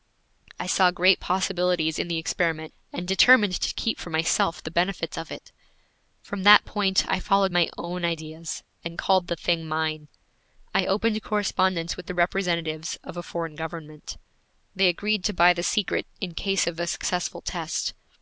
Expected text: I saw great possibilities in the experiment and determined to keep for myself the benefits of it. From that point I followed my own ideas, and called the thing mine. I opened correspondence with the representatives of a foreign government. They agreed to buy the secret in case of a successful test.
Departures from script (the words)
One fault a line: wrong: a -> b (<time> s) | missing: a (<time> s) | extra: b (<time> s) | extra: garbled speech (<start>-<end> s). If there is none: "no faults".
no faults